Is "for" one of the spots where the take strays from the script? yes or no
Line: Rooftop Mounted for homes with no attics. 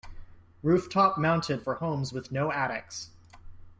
no